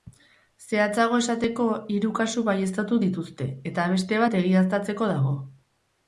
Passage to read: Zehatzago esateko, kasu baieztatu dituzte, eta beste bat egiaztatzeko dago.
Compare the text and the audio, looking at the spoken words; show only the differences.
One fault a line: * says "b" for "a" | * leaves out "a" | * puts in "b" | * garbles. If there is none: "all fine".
* puts in "hiru"